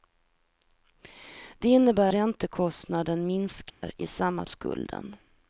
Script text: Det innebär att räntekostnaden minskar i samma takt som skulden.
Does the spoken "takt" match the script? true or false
false